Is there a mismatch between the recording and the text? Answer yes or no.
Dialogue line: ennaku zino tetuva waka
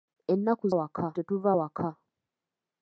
yes